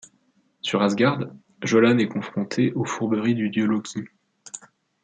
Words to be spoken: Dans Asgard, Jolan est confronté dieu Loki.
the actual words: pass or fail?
fail